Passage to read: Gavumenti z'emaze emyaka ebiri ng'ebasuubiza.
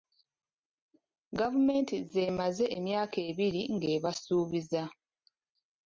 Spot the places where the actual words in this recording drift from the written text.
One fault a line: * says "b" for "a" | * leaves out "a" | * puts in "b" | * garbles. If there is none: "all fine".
all fine